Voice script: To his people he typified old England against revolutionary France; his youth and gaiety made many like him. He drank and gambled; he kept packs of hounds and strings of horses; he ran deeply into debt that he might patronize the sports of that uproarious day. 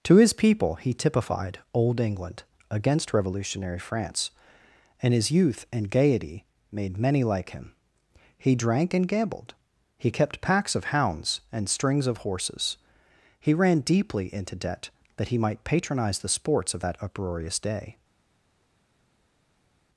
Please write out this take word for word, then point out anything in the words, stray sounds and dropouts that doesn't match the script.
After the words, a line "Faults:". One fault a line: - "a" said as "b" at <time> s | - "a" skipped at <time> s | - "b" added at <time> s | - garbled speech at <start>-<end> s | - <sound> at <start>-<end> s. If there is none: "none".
To his people he typified old England against revolutionary France; and his youth and gaiety made many like him. He drank and gambled; he kept packs of hounds and strings of horses; he ran deeply into debt that he might patronize the sports of that uproarious day.
Faults:
- "and" added at 5.0 s